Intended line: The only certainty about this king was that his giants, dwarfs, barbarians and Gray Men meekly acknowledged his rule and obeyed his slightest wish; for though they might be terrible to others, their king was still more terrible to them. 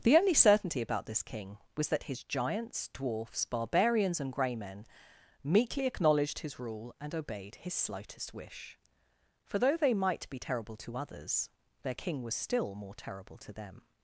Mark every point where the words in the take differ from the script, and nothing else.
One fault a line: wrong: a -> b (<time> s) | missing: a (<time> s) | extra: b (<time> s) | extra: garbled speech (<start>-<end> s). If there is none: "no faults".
no faults